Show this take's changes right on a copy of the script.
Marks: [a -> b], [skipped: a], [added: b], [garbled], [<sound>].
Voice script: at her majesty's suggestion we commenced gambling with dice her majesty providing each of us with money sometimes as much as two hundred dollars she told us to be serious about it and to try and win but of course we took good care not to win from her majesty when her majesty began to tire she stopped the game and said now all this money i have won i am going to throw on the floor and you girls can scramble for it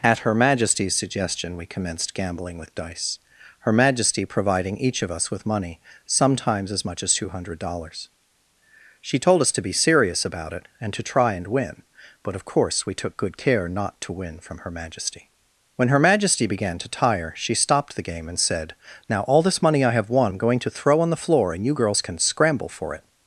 at her majesty's suggestion we commenced gambling with dice her majesty providing each of us with money sometimes as much as two hundred dollars she told us to be serious about it and to try and win but of course we took good care not to win from her majesty when her majesty began to tire she stopped the game and said now all this money i have won [skipped: i] am going to throw on the floor and you girls can scramble for it